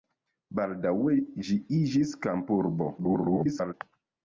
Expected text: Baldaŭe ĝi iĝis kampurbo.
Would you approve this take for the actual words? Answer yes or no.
no